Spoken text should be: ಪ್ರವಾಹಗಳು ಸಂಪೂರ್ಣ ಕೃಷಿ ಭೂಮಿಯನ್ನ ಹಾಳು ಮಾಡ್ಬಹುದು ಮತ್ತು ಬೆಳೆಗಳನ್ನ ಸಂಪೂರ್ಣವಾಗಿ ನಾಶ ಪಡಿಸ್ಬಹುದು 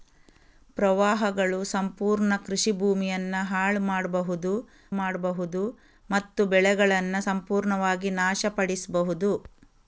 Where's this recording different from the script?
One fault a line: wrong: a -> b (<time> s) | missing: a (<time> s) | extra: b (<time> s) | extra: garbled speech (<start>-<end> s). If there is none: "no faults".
extra: ಮಾಡ್ಬಹುದು (5.0 s)